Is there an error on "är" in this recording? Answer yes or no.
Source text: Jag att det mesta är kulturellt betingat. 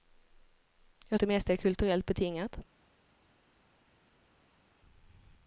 no